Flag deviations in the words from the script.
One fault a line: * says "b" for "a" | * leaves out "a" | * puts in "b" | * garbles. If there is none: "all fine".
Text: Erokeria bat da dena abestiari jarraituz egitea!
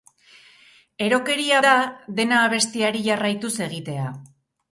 * leaves out "bat"